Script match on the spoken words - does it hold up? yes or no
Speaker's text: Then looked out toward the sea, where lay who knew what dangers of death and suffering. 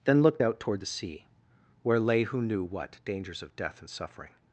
yes